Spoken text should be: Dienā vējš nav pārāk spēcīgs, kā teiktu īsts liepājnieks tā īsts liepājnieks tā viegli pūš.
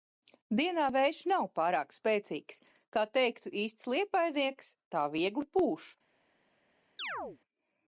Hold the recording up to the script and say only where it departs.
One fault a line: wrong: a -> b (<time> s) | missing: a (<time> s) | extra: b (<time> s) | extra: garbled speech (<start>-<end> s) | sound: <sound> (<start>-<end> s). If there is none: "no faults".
missing: īsts liepājnieks tā (5.1 s)
sound: chirp (7.0-7.4 s)